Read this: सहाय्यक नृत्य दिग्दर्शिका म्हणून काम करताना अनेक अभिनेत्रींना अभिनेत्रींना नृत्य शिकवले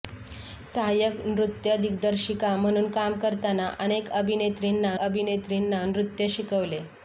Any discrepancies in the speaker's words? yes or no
no